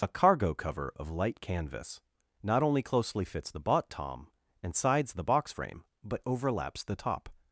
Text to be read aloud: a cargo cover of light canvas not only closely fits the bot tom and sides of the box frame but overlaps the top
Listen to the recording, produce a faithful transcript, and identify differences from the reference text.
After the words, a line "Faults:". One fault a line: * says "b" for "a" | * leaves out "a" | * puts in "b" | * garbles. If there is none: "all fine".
a cargo cover of light canvas not only closely fits the bot tom and sides the box frame but overlaps the top
Faults:
* leaves out "of"